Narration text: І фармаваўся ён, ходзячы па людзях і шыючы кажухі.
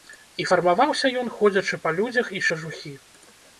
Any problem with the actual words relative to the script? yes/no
yes